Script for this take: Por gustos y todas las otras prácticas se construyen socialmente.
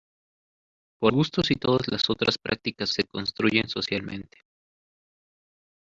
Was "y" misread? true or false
false